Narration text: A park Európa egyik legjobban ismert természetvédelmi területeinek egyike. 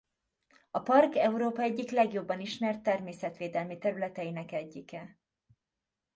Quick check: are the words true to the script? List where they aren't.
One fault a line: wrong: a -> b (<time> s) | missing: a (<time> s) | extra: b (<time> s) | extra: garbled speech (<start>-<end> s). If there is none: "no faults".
no faults